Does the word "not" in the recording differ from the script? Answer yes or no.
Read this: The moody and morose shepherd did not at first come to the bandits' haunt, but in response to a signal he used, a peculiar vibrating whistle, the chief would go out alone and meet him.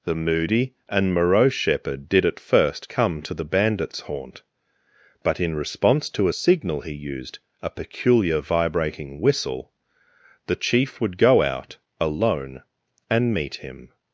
yes